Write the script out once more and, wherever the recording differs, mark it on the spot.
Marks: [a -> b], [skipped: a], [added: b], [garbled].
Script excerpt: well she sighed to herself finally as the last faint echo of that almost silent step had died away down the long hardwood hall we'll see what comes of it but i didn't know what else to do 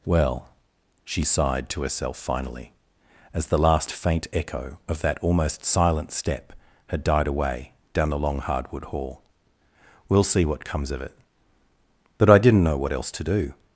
well she sighed to herself finally as the last faint echo of that almost silent step had died away down the long hardwood hall we'll see what comes of it but i didn't know what else to do